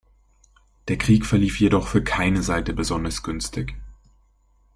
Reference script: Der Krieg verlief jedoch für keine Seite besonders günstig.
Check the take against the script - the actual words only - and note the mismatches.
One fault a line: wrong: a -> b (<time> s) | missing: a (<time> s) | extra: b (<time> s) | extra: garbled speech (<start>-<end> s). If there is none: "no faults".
no faults